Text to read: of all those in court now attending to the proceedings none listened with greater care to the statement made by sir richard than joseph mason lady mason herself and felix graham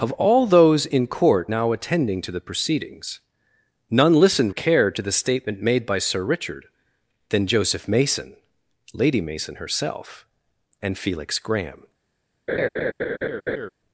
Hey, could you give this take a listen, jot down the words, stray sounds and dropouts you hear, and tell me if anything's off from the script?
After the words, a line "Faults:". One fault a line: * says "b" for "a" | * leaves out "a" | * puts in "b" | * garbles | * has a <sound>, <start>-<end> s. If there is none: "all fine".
of all those in court now attending to the proceedings none listened care to the statement made by sir richard than joseph mason lady mason herself and felix graham
Faults:
* leaves out "with greater"
* has a laugh, 12.5-13.7 s